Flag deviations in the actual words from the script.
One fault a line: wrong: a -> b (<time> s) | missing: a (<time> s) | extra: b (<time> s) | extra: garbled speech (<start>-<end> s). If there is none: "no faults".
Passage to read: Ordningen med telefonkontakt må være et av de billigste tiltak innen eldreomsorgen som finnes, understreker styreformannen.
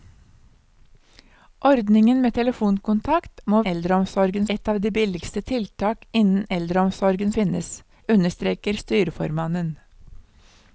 wrong: være -> eldreomsorgen (3.7 s)
missing: som (7.3 s)